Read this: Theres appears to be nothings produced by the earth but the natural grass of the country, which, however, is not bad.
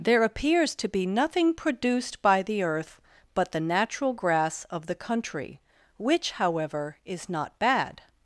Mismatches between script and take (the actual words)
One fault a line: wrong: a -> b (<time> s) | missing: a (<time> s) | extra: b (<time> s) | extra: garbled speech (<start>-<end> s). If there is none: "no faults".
wrong: Theres -> There (0.0 s)
wrong: nothings -> nothing (1.1 s)